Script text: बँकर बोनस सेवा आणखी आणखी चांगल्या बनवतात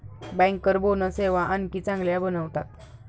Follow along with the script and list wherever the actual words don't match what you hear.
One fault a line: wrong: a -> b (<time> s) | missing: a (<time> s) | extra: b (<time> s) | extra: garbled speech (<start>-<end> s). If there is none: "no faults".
missing: आणखी (1.8 s)